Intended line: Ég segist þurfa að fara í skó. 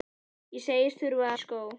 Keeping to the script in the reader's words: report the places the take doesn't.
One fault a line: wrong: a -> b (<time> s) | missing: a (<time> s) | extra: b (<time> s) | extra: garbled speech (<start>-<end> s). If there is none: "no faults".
missing: að fara (1.3 s)